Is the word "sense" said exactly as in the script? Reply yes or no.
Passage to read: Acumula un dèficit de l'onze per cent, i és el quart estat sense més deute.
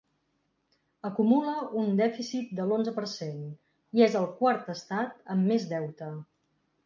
no